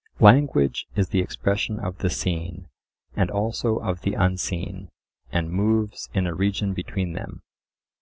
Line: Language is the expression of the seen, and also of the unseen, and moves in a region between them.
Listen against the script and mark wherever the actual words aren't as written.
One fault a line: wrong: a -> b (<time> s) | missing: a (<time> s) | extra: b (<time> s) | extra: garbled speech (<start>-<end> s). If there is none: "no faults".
no faults